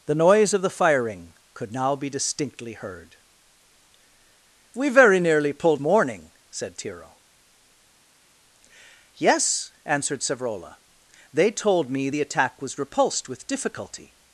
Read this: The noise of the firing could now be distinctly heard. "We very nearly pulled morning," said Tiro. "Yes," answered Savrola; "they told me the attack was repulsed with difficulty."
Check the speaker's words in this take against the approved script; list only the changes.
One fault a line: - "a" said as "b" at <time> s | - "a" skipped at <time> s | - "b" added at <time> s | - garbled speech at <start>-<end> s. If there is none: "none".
none